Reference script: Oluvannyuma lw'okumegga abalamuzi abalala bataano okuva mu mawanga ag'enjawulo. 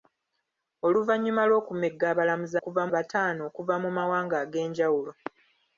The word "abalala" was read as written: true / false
false